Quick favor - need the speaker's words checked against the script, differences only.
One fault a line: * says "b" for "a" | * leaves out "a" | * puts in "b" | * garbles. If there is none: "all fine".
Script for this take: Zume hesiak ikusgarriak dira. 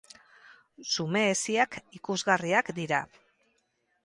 all fine